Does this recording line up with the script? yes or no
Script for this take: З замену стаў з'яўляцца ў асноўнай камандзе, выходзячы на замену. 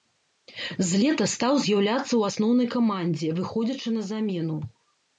no